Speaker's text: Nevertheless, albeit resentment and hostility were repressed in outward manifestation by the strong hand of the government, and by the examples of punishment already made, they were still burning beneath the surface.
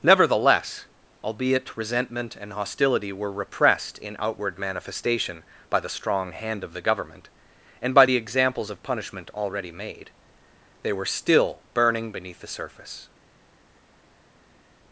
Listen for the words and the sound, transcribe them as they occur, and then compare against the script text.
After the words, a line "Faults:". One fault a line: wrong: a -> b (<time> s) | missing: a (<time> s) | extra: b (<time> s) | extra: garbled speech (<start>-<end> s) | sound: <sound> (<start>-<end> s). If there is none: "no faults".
Nevertheless, albeit resentment and hostility were repressed in outward manifestation by the strong hand of the government, and by the examples of punishment already made, they were still burning beneath the surface.
Faults:
no faults